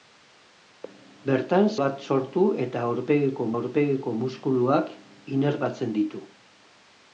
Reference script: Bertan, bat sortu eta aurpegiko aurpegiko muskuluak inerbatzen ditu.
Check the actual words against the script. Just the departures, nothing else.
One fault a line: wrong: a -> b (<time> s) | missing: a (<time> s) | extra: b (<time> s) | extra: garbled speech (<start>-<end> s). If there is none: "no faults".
no faults